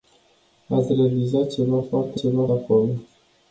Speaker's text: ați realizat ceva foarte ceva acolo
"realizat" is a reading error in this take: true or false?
false